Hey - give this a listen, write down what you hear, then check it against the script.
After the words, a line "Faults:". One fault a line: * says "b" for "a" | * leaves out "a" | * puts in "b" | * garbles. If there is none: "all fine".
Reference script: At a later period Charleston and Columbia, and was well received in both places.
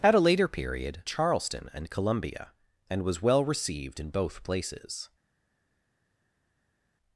At a later period Charleston and Columbia, and was well received in both places.
Faults:
all fine